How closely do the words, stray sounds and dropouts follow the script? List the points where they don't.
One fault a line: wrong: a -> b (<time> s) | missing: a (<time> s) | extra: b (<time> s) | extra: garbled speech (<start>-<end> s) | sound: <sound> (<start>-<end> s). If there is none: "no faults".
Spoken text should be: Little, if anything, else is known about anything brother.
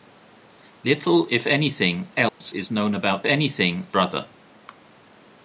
sound: dropout (2.3-2.4 s)